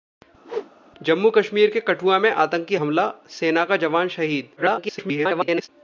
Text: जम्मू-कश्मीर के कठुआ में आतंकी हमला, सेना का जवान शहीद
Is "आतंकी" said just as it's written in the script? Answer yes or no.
yes